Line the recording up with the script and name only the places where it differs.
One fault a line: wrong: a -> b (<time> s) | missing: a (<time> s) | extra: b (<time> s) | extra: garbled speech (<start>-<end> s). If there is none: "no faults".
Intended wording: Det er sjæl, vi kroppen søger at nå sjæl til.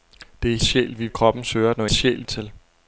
no faults